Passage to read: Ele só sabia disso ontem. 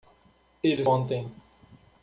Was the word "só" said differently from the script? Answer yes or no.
yes